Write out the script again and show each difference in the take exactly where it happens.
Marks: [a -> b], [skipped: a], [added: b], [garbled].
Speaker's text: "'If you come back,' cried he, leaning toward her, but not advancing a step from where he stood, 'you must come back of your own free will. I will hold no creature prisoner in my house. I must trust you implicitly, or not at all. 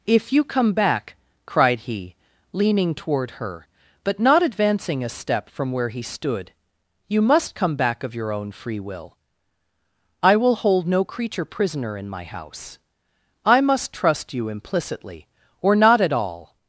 "'If you come back,' cried he, leaning toward her, but not advancing a step from where he stood, 'you must come back of your own free will. I will hold no creature prisoner in my house. I must trust you implicitly, or not at all.